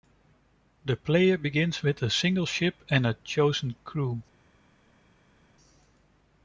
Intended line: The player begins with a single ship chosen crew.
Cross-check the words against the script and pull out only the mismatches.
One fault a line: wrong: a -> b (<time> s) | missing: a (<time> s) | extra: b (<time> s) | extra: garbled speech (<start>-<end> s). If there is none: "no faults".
extra: and a (2.9 s)